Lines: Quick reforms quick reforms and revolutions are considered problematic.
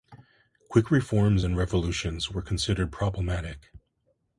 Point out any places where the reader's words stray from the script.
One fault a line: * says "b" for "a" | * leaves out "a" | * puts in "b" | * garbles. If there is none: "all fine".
* leaves out "quick reforms"
* says "were" for "are"